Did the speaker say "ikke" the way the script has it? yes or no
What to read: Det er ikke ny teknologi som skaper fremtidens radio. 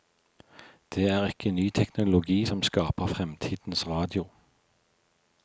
yes